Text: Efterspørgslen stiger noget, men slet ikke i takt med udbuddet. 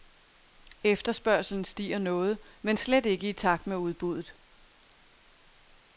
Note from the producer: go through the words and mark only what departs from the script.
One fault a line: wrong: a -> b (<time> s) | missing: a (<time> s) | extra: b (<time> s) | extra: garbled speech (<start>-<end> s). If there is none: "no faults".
no faults